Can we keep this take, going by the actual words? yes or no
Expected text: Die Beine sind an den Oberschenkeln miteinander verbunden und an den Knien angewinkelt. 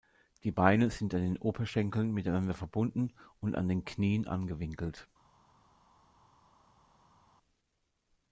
yes